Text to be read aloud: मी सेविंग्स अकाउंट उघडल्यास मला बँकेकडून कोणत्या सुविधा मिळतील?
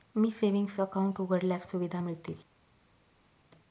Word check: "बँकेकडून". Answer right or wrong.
wrong